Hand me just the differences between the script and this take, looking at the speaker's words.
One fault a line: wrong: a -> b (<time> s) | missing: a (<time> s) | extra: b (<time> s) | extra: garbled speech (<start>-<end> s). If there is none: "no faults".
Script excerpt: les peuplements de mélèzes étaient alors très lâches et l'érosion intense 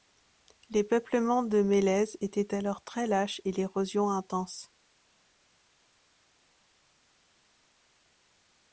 no faults